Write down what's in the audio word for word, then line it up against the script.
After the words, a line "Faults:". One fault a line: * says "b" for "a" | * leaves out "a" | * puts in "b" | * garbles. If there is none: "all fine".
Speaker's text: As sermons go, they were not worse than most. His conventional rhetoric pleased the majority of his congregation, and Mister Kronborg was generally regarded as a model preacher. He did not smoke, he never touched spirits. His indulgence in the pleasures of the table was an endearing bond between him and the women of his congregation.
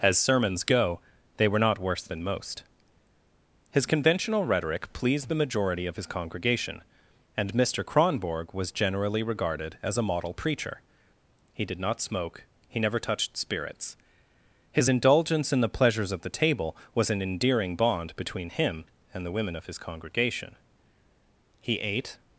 As sermons go, they were not worse than most. His conventional rhetoric pleased the majority of his congregation, and Mister Kronborg was generally regarded as a model preacher. He did not smoke, he never touched spirits. His indulgence in the pleasures of the table was an endearing bond between him and the women of his congregation. He ate
Faults:
* puts in "He ate"